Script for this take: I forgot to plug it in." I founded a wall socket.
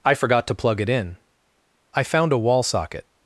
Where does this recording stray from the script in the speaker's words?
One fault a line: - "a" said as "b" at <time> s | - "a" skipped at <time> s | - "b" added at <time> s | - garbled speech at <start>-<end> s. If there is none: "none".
- "founded" said as "found" at 2.0 s